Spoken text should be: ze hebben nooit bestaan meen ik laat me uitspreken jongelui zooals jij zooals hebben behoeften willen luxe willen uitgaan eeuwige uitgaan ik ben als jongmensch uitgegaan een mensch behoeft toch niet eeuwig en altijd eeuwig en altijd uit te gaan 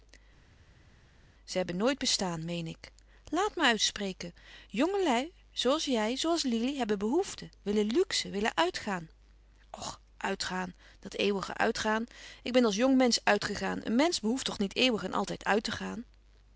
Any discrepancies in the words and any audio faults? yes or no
yes